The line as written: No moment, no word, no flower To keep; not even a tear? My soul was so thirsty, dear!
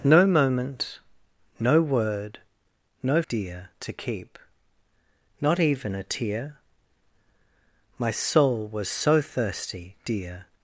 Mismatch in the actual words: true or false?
true